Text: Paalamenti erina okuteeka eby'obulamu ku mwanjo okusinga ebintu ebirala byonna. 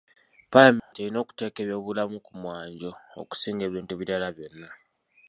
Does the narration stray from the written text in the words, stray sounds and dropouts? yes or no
yes